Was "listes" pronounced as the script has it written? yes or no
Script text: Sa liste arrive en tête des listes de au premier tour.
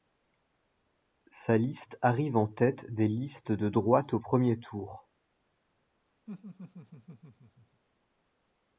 yes